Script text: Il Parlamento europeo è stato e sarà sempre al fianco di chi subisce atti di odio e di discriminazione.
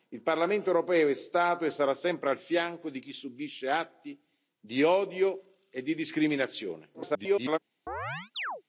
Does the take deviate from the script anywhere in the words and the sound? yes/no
yes